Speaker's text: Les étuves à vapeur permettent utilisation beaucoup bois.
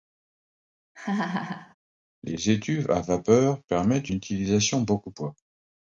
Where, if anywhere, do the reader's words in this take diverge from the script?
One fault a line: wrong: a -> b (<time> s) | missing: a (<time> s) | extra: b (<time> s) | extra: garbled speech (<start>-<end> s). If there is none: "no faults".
no faults